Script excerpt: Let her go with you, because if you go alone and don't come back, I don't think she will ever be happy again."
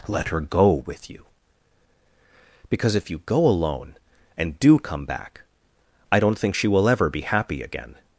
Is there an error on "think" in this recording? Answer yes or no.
no